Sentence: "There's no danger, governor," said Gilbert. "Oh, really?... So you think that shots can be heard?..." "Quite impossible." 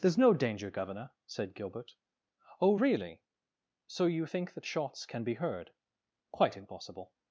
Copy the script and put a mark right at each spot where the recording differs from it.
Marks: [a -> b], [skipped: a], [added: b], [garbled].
"There's no danger, governor," said Gilbert. "Oh, really?... So you think that shots can be heard?..." "Quite impossible."